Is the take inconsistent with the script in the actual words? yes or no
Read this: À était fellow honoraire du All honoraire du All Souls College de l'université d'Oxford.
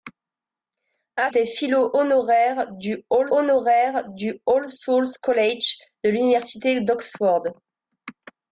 no